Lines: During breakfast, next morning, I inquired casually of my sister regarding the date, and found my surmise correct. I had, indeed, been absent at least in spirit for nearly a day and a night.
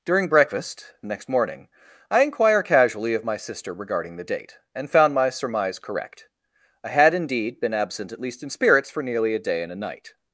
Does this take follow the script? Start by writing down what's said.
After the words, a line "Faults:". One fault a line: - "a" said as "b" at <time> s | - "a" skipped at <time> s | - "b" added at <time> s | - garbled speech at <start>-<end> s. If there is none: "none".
During breakfast, next morning, I inquire casually of my sister regarding the date, and found my surmise correct. I had, indeed, been absent at least in spirits for nearly a day and a night.
Faults:
- "inquired" said as "inquire" at 2.2 s
- "spirit" said as "spirits" at 8.5 s